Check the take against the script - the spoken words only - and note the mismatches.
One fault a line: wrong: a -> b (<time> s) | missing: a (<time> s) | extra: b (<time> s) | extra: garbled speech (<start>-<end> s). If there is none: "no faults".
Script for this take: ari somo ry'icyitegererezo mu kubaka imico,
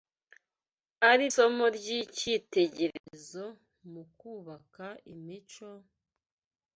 no faults